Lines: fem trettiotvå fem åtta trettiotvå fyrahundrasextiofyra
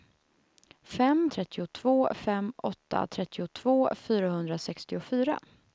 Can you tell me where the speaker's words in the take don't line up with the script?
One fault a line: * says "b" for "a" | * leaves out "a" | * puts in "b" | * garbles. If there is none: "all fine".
all fine